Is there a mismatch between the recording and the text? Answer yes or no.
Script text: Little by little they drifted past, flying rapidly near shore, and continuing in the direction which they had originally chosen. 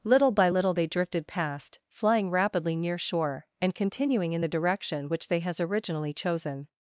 yes